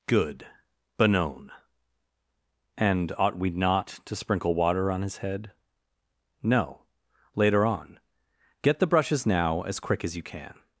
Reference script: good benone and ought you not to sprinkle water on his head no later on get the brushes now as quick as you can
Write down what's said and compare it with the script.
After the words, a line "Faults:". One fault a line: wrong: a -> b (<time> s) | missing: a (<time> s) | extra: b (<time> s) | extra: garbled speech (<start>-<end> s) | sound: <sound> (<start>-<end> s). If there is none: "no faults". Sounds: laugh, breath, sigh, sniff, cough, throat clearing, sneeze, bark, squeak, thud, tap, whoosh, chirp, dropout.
good benone and ought we not to sprinkle water on his head no later on get the brushes now as quick as you can
Faults:
wrong: you -> we (3.4 s)